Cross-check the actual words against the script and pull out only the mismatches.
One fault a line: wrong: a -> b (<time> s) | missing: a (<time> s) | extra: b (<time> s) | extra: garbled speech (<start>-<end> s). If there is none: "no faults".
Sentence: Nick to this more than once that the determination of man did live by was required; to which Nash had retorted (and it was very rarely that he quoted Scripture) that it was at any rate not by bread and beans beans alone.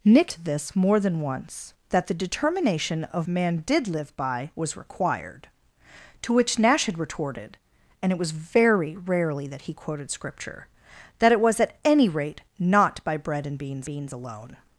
no faults